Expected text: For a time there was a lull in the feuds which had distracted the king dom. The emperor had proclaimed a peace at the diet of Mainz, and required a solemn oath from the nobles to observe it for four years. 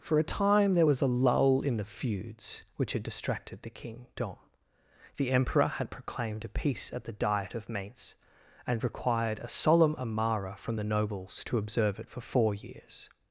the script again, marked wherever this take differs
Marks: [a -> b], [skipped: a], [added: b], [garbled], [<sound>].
For a time there was a lull in the feuds which had distracted the king dom. The emperor had proclaimed a peace at the diet of Mainz, and required a solemn [oath -> amara] from the nobles to observe it for four years.